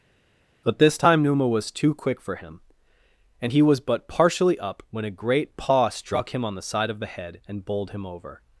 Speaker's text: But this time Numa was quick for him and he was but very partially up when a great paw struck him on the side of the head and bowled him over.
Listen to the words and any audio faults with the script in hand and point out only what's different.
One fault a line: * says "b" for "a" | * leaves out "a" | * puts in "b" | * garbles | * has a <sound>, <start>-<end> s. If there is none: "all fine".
* puts in "too"
* leaves out "very"